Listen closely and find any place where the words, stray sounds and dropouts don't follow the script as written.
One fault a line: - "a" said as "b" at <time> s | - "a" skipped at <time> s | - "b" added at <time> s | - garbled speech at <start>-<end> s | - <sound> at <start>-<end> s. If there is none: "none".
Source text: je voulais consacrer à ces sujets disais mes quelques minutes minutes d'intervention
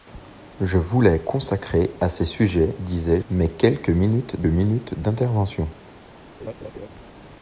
- laugh at 6.4-6.9 s